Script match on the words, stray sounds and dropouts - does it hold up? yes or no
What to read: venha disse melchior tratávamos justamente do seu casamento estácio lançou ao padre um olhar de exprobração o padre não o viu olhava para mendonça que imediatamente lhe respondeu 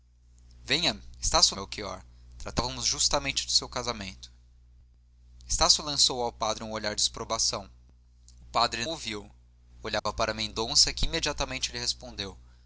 no